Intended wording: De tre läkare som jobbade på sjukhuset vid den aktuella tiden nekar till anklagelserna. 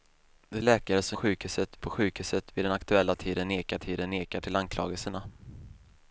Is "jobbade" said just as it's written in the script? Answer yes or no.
no